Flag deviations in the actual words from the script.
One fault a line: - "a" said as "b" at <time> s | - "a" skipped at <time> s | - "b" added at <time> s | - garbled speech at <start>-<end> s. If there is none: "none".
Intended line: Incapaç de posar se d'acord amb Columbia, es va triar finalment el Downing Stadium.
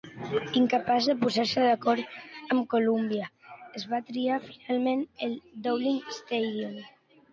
none